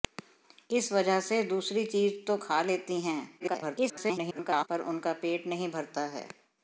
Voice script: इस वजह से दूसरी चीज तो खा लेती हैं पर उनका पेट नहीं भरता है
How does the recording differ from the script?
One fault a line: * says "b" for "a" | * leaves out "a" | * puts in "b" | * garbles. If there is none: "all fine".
* garbles